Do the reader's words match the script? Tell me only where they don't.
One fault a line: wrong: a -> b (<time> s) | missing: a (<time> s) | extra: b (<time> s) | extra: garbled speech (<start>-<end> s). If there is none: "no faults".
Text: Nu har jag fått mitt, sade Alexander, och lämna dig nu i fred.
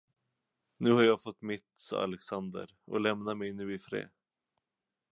wrong: dig -> mig (3.4 s)